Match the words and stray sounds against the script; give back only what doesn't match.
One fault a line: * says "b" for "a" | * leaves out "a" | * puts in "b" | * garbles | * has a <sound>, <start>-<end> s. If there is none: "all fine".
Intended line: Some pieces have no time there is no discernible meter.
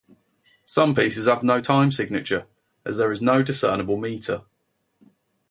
* puts in "signature as"